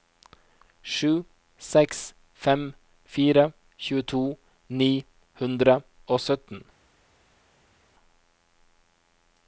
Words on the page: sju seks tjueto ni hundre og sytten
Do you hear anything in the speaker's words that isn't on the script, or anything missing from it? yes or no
yes